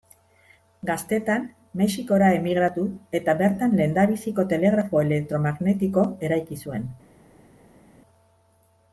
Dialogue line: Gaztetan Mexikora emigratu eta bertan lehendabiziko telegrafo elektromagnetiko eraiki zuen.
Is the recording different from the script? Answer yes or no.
no